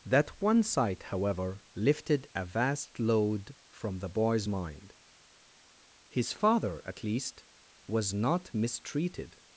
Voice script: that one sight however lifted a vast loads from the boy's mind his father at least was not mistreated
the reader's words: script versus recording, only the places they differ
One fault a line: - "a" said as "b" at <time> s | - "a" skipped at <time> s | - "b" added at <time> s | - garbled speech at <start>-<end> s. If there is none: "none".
- "loads" said as "load" at 3.0 s